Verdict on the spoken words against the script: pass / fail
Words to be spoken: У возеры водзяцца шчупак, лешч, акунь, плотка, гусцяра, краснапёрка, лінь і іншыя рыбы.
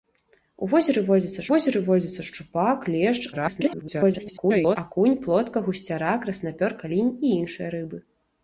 fail